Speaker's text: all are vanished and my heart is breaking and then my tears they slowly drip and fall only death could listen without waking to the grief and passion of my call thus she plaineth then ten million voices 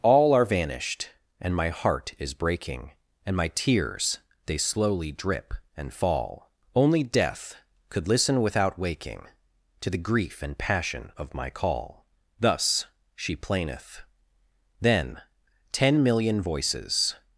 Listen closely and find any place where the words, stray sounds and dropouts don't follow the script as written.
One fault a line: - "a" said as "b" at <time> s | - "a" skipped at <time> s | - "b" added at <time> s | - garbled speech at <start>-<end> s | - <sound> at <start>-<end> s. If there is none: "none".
- "then" skipped at 3.4 s